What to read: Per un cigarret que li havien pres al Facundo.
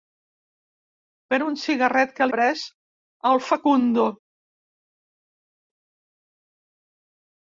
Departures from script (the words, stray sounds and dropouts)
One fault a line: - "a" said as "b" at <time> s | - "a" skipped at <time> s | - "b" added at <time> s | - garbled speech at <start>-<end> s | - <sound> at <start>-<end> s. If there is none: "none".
- "li havien" skipped at 2.3 s